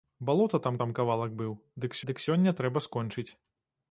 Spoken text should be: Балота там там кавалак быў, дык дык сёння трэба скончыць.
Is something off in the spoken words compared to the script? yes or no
no